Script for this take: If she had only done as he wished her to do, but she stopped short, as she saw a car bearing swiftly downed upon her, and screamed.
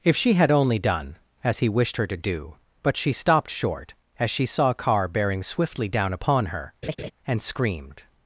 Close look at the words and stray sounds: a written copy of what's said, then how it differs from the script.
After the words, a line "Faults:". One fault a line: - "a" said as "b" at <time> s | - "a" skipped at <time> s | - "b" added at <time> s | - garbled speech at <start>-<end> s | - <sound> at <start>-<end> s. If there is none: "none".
If she had only done as he wished her to do, but she stopped short, as she saw a car bearing swiftly down upon her, and screamed.
Faults:
- "downed" said as "down" at 5.9 s
- laugh at 6.8-7.1 s